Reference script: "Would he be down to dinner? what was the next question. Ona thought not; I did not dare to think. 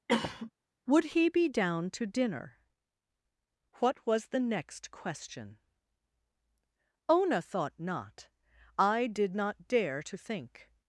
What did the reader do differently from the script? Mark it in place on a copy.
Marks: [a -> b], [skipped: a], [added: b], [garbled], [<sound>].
[cough] "Would he be down to dinner? what was the next question. Ona thought not; I did not dare to think.